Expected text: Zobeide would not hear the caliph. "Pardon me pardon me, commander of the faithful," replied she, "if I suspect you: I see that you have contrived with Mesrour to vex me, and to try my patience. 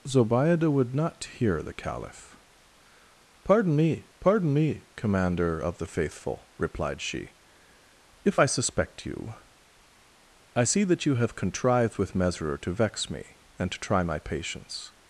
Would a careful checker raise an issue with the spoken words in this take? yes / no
no